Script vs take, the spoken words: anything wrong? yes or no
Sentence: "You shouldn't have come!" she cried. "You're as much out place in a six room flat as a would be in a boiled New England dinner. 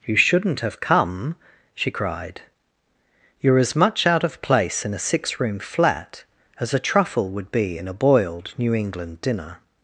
yes